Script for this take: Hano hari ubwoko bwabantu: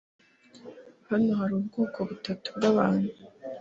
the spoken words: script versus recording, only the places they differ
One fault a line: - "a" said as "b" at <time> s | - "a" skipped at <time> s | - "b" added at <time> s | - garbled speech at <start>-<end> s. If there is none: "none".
- "butatu" added at 2.1 s